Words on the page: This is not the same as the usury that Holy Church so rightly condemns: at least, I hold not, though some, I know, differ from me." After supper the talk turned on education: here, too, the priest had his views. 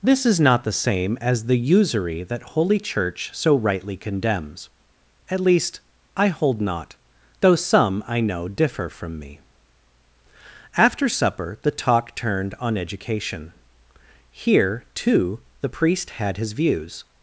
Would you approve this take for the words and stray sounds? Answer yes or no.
yes